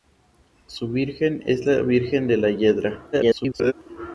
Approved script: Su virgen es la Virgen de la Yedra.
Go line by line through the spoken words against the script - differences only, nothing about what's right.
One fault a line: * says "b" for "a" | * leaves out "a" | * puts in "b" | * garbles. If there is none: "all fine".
* garbles